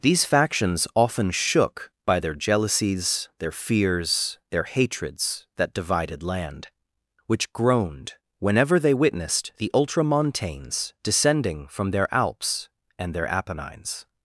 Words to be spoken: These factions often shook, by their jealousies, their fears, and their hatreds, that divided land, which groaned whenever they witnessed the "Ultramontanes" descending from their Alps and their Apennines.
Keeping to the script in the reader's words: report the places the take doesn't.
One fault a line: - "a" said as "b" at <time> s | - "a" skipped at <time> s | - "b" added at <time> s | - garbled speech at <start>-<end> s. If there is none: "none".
- "and" skipped at 4.4 s